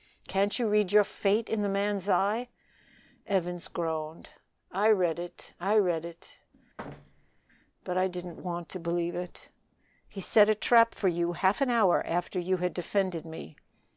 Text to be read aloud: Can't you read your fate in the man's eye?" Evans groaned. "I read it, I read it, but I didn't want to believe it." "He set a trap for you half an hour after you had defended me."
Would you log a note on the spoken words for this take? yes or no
no